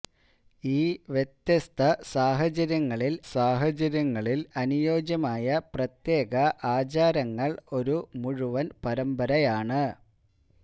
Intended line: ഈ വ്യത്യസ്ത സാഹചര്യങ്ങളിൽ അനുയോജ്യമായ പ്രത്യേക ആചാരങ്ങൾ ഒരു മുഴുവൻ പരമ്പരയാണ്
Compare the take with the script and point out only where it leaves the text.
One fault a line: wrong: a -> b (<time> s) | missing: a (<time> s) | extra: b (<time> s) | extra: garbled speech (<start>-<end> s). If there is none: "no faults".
extra: സാഹചര്യങ്ങളിൽ (3.3 s)